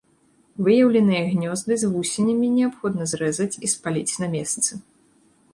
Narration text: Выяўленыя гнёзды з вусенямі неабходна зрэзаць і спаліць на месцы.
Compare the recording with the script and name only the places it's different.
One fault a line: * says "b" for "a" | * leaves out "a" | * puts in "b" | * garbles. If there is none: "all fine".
all fine